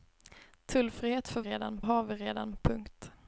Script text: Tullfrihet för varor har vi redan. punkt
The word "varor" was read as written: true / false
false